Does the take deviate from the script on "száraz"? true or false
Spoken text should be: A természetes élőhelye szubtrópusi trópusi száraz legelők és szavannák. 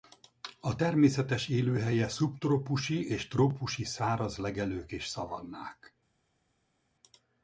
false